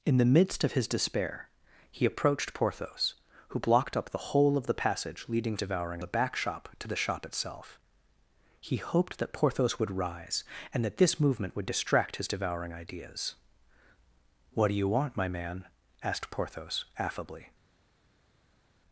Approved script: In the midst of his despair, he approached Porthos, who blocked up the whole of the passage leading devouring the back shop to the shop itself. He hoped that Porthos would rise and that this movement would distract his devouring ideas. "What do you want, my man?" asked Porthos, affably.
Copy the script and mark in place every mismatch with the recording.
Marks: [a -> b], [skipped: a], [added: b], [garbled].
In the midst of his despair, he approached Porthos, who blocked up the whole of the passage leading devouring the back shop to the shop itself. He hoped that Porthos would rise and that this movement would distract his devouring ideas. "What do you want, my man?" asked Porthos, affably.